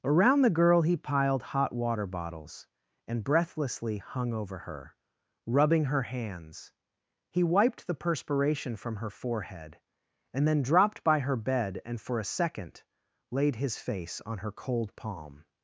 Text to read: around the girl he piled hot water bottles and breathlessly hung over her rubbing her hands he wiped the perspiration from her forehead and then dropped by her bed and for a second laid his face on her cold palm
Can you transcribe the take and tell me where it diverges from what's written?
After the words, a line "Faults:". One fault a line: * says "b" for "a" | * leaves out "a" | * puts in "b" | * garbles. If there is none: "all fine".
around the girl he piled hot water bottles and breathlessly hung over her rubbing her hands he wiped the perspiration from her forehead and then dropped by her bed and for a second laid his face on her cold palm
Faults:
all fine